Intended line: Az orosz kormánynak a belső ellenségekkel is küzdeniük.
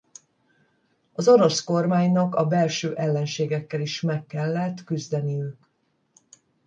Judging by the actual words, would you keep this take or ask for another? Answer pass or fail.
fail